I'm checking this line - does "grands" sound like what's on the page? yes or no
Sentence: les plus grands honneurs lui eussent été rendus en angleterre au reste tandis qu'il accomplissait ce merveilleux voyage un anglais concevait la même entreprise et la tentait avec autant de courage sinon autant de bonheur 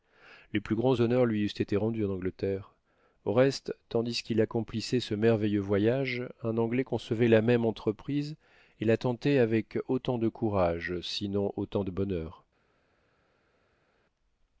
yes